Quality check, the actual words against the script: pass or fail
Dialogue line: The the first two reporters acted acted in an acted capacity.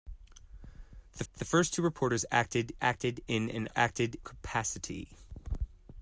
pass